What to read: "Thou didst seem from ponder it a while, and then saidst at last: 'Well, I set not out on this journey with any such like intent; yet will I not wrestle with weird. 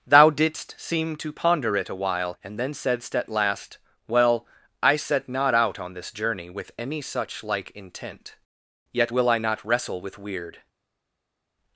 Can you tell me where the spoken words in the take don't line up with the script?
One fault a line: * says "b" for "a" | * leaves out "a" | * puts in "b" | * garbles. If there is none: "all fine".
* says "to" for "from"